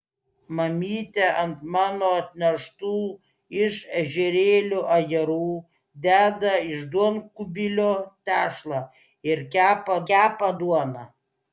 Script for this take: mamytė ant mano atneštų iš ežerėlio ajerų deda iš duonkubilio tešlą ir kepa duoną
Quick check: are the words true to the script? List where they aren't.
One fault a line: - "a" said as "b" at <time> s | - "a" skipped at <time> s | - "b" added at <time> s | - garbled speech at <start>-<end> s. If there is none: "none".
- "kepa" added at 10.1 s